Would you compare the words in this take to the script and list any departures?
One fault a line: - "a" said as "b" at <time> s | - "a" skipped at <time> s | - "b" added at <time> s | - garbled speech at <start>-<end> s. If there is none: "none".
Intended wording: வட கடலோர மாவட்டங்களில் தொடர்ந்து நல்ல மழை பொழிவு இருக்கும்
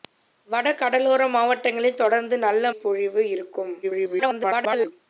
- "மழை" skipped at 2.7 s
- garbled speech at 3.8-4.9 s